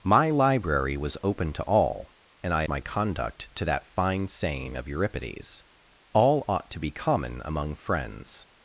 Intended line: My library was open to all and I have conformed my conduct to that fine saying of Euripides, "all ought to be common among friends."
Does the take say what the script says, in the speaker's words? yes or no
no